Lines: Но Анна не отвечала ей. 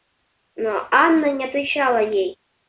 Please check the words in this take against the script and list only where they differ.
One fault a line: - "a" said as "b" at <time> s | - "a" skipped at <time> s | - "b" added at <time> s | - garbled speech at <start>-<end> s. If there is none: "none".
none